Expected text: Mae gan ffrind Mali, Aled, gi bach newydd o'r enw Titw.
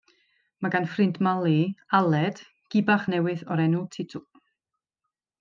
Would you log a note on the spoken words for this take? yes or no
no